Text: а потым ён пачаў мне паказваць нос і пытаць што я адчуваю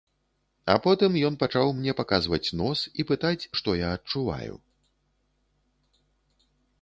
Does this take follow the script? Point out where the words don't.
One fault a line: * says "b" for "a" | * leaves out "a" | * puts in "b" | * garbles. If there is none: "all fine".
all fine